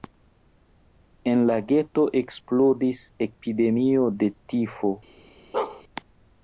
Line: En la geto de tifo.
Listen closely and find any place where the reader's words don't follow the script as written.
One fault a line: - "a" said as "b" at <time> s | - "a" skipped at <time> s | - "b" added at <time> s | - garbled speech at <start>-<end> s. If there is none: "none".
- "eksplodis epidemio" added at 2.2 s